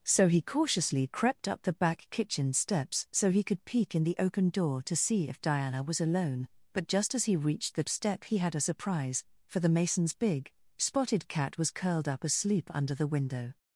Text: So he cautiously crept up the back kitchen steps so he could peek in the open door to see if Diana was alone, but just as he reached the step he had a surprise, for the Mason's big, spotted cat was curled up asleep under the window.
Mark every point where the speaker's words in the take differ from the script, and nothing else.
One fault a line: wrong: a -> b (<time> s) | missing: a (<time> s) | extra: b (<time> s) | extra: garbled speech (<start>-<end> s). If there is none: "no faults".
no faults